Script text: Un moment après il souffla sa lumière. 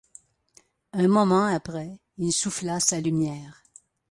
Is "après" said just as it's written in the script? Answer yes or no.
yes